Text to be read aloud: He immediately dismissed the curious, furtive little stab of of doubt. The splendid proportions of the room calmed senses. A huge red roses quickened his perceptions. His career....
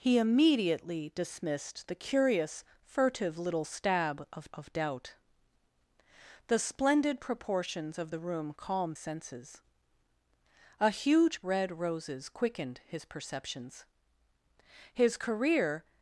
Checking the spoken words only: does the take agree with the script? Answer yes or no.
yes